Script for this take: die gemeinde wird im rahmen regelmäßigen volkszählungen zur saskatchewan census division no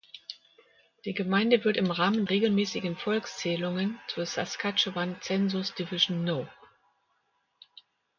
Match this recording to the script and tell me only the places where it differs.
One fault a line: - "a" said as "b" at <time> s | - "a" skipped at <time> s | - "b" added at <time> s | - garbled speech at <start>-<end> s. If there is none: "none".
none